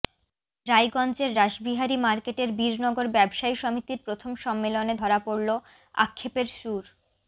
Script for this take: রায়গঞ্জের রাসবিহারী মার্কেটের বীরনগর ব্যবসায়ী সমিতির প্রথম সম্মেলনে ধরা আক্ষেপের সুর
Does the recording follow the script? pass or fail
fail